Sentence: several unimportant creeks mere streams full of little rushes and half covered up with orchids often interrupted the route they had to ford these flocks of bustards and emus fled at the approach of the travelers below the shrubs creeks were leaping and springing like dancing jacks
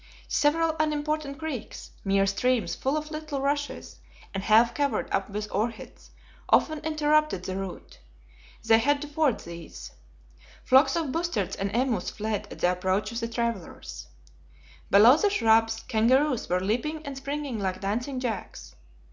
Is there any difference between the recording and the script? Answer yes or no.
yes